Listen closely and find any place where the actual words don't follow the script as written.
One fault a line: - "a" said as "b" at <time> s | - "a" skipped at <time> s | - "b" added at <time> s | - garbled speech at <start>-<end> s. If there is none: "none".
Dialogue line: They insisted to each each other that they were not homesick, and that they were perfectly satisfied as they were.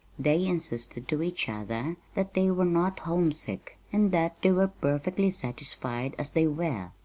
- "each" skipped at 1.5 s